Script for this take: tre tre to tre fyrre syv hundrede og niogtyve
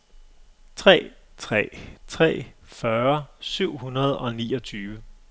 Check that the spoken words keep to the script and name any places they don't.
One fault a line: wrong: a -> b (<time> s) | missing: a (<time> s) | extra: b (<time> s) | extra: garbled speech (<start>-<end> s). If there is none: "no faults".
missing: to (1.7 s)